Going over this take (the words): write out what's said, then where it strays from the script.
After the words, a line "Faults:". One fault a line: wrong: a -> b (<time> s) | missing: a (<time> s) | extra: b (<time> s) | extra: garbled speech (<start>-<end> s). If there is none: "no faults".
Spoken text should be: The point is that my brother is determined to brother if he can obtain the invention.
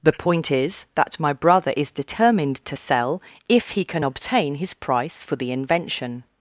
The point is that my brother is determined to sell if he can obtain his price for the invention.
Faults:
wrong: brother -> sell (2.8 s)
extra: his price for (4.6 s)